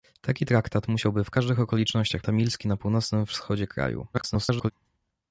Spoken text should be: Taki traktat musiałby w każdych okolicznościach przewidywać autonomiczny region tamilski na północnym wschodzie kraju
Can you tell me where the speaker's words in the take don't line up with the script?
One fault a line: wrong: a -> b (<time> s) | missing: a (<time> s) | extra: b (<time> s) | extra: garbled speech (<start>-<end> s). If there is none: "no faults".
missing: przewidywać autonomiczny region (2.2 s)
extra: garbled speech (4.1-4.7 s)